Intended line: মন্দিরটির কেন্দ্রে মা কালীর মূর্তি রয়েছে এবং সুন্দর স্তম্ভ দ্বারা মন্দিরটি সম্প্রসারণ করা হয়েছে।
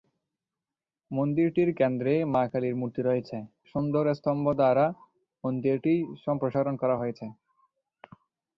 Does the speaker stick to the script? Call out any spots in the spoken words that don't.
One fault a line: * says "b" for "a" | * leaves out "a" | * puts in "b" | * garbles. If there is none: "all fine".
* leaves out "এবং"